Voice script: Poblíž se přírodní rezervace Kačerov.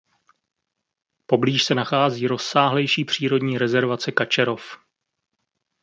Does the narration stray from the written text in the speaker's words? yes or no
yes